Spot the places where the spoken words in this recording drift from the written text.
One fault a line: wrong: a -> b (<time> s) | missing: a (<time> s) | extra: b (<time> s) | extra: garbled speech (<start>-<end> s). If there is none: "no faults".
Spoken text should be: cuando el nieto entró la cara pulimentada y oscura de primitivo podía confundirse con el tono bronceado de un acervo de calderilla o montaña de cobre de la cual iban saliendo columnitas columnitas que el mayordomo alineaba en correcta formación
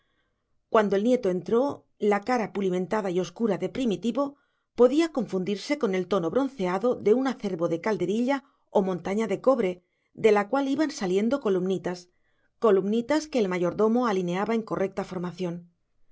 no faults